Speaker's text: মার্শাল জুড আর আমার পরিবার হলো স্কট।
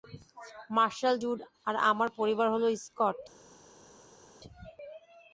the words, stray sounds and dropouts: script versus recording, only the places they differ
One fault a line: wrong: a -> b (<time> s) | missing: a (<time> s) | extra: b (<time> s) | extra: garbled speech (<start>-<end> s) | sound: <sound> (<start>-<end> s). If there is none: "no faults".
no faults